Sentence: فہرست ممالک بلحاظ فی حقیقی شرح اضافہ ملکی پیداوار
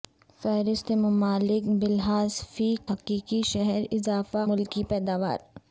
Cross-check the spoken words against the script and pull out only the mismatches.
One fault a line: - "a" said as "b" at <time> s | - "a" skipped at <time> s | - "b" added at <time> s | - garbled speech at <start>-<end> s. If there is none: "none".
none